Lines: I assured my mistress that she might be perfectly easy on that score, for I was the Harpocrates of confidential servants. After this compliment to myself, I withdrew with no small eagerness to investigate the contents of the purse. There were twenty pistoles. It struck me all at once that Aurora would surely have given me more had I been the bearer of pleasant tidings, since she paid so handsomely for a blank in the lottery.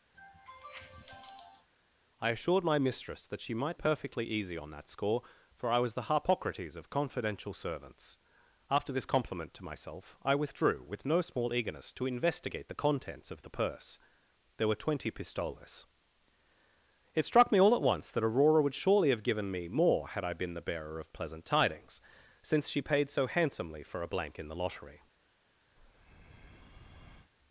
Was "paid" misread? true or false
false